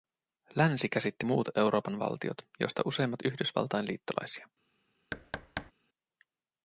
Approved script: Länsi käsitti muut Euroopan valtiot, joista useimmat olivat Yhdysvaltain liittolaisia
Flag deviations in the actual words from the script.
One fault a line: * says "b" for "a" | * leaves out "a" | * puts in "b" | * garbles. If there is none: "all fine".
* leaves out "olivat"